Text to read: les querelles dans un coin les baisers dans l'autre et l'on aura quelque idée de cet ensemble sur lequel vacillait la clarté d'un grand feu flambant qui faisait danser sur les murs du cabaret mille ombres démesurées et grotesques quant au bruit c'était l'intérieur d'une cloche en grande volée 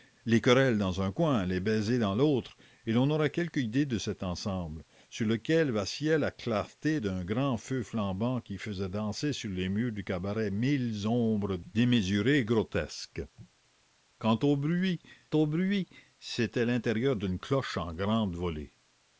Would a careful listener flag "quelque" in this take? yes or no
no